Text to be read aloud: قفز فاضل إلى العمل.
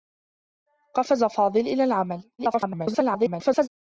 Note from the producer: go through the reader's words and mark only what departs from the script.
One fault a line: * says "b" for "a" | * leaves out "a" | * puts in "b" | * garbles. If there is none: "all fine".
* garbles